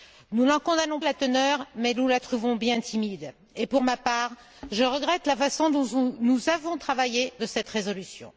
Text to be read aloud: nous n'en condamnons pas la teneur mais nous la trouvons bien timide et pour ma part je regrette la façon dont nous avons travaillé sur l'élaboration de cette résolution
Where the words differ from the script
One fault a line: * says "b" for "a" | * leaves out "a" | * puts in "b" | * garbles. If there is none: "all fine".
* leaves out "pas"
* leaves out "sur l'élaboration"